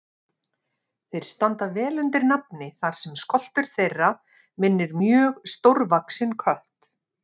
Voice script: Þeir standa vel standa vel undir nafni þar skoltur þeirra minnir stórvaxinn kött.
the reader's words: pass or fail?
fail